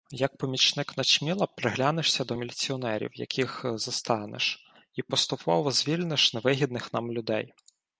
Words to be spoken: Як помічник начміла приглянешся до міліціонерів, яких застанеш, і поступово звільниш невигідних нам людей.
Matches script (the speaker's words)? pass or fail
pass